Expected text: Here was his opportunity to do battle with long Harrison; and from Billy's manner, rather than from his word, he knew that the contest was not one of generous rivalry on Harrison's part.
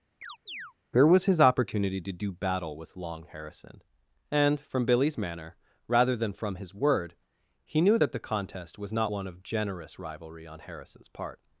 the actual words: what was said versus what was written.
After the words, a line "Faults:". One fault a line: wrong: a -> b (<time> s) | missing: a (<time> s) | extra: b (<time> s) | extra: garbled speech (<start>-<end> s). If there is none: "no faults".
Here was his opportunity to do battle with long Harrison; and from Billy's manner, rather than from his word, he knew that the contest was not one of generous rivalry on Harrison's part.
Faults:
no faults